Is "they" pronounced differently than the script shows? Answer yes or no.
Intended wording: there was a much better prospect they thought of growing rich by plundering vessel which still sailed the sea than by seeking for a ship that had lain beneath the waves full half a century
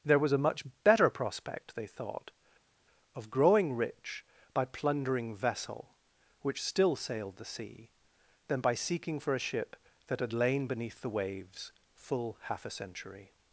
no